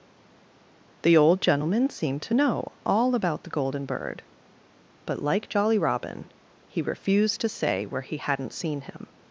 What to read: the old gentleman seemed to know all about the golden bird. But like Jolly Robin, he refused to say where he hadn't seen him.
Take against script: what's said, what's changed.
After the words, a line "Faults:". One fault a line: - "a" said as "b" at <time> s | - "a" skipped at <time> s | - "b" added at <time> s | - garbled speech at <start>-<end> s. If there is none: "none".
the old gentleman seemed to know all about the golden bird. But like Jolly Robin, he refused to say where he hadn't seen him.
Faults:
none